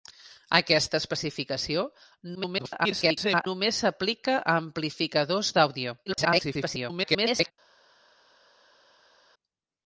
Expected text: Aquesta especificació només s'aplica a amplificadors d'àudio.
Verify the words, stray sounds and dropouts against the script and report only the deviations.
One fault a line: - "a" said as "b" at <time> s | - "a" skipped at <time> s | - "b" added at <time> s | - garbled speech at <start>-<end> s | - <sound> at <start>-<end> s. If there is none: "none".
- garbled speech at 2.3-3.5 s
- garbled speech at 6.1-7.5 s